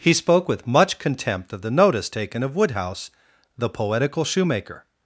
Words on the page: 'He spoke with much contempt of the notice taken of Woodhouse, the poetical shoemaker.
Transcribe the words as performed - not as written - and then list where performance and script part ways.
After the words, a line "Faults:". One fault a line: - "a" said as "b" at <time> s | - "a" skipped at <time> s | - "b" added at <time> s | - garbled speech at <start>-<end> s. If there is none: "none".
'He spoke with much contempt of the notice taken of Woodhouse, the poetical shoemaker.
Faults:
none